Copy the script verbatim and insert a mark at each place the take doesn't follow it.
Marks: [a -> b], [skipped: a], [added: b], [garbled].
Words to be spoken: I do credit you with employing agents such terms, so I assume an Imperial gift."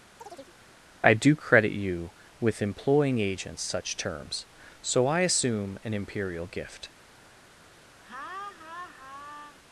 I do credit you with employing agents such terms, so I assume an Imperial gift."